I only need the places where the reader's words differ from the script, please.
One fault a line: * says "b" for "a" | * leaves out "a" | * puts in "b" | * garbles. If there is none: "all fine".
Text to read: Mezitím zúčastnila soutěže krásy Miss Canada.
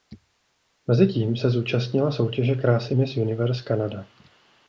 * puts in "se"
* puts in "Universe"